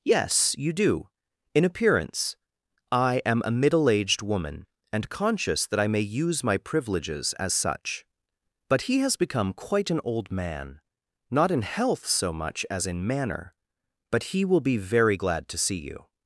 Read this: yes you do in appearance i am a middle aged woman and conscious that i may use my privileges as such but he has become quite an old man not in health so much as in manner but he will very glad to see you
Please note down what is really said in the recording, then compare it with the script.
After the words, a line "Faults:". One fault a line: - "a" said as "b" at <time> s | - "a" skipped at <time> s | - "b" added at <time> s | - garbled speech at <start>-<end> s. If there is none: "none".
yes you do in appearance i am a middle aged woman and conscious that i may use my privileges as such but he has become quite an old man not in health so much as in manner but he will be very glad to see you
Faults:
- "be" added at 14.6 s